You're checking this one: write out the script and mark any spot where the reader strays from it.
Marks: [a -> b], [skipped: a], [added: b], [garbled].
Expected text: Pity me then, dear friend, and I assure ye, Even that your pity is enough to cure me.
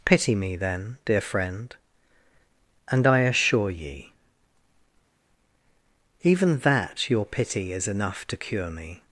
Pity me then, dear friend, and I assure ye, Even that your pity is enough to cure me.